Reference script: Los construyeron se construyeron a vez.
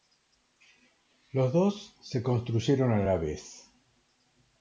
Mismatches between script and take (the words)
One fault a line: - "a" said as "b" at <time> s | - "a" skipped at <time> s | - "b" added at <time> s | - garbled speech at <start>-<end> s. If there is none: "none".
- "construyeron" said as "dos" at 1.5 s
- "la" added at 3.0 s